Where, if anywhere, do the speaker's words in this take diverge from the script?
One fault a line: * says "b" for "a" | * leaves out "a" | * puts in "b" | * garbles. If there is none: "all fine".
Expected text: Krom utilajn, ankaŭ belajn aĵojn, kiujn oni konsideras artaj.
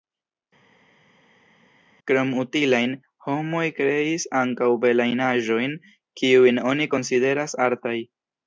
* puts in "homoj kreis"